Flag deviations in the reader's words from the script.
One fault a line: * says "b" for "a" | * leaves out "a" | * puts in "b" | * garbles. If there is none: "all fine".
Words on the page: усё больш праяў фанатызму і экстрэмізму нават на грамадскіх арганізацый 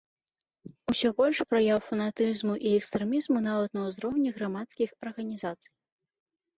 * puts in "ўзроўні"